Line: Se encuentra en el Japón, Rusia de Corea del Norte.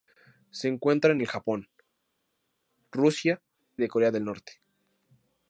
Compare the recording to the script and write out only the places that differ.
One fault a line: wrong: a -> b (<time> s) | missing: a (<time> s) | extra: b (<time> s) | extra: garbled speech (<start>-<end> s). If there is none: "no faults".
no faults